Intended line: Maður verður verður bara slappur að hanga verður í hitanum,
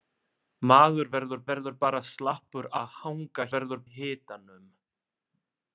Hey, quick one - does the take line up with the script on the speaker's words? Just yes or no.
yes